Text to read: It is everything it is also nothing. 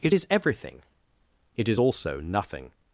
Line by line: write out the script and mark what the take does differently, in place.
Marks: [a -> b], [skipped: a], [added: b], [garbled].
It is everything it is also nothing.